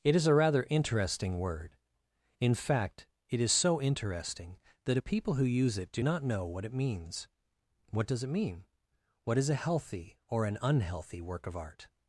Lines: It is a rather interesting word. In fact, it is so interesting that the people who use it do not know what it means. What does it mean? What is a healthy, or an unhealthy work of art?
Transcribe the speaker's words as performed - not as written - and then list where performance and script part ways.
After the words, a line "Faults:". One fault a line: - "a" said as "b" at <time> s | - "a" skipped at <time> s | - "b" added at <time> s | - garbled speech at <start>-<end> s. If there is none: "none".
It is a rather interesting word. In fact, it is so interesting that a people who use it do not know what it means. What does it mean? What is a healthy, or an unhealthy work of art?
Faults:
- "the" said as "a" at 4.9 s